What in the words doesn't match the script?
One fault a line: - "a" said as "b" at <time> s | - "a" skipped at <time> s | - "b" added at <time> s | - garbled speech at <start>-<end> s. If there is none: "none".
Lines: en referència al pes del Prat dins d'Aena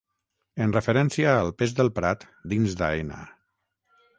none